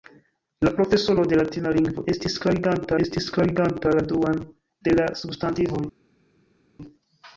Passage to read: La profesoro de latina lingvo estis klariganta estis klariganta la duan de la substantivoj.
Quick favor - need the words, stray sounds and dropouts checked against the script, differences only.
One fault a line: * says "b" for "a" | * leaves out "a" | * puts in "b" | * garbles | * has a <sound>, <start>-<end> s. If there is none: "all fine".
all fine